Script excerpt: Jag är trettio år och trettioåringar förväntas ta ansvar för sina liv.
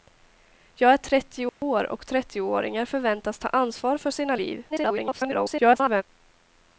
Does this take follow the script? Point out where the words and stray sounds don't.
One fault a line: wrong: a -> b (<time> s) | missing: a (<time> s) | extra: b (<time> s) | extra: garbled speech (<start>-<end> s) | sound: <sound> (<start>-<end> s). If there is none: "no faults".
sound: dropout (1.5-1.6 s)
extra: garbled speech (4.7-6.0 s)